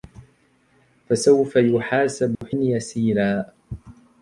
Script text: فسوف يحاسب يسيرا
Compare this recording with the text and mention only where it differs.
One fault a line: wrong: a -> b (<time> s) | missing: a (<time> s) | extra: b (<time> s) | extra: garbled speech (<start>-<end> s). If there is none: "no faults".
no faults